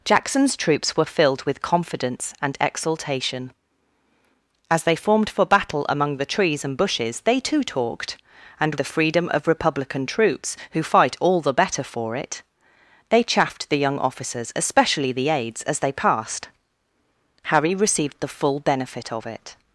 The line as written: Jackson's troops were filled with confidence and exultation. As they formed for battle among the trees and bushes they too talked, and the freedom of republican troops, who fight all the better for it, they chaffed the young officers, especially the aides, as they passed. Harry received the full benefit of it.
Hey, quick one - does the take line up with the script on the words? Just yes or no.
yes